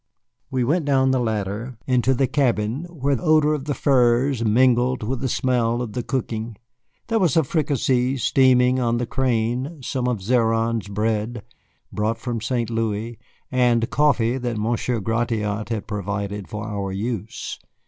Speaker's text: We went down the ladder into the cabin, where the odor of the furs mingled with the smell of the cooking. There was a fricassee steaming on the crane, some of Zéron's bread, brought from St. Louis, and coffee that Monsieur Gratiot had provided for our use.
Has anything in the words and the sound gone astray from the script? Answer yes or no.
yes